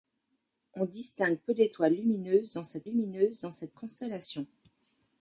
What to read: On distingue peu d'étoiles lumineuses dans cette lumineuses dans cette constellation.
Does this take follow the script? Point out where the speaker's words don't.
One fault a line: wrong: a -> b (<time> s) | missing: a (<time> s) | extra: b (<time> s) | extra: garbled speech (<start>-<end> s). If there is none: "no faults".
no faults